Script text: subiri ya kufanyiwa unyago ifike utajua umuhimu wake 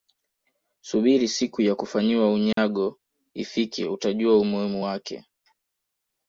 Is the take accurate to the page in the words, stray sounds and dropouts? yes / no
no